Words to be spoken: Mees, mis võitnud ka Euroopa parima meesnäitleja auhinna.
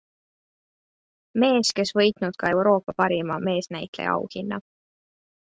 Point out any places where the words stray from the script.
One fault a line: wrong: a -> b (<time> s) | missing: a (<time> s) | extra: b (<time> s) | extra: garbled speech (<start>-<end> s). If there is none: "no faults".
wrong: mis -> kes (1.8 s)